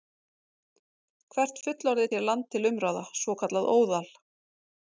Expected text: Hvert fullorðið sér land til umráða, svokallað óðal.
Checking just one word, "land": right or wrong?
right